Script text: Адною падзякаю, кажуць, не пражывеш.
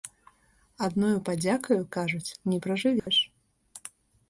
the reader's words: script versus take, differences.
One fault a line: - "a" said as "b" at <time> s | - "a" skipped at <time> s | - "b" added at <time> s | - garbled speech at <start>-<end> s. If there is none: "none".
none